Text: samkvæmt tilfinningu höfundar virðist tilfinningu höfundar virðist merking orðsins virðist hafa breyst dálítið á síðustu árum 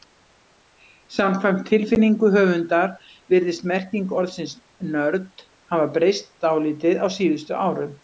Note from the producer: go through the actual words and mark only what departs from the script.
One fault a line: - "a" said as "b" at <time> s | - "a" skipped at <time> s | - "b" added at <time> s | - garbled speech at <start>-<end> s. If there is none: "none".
- "tilfinningu höfundar virðist" skipped at 3.7 s
- "virðist" said as "nörd" at 5.0 s